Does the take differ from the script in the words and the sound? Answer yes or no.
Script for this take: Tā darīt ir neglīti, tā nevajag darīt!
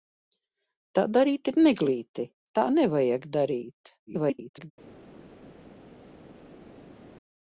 yes